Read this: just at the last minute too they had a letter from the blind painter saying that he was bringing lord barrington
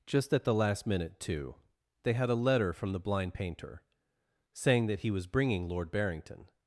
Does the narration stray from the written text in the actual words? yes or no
no